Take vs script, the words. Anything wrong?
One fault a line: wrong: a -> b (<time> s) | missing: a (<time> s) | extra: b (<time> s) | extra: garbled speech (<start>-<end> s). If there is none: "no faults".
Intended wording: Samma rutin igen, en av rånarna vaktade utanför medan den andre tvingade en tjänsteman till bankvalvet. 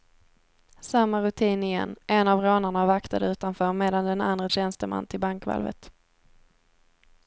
missing: tvingade en (4.5 s)